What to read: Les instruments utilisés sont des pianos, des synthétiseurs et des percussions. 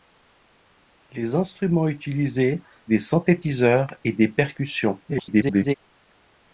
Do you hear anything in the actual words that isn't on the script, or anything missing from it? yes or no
yes